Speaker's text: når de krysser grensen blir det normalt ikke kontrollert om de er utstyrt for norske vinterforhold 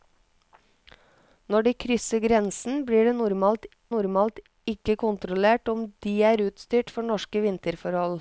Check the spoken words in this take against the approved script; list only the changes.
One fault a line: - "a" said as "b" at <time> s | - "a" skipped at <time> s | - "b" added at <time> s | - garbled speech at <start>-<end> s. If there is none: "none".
- "normalt" added at 3.9 s